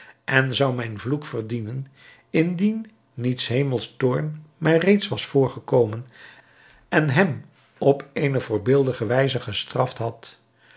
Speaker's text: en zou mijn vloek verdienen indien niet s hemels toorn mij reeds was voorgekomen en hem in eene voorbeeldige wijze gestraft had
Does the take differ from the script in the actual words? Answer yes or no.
yes